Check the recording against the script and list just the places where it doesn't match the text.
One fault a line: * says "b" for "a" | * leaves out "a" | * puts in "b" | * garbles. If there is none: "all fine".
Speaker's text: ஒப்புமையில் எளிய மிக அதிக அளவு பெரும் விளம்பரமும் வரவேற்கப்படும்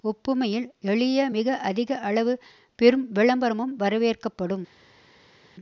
all fine